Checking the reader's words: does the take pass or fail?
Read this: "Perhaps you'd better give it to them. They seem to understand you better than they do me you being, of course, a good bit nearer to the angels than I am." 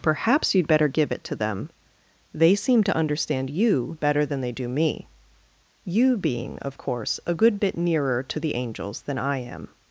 pass